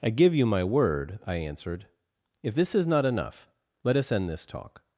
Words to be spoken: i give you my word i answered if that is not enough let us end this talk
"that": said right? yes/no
no